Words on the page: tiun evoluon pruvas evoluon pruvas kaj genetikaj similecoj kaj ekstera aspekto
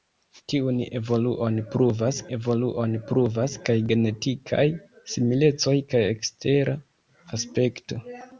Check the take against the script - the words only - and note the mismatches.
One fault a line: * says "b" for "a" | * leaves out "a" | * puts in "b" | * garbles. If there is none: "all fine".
all fine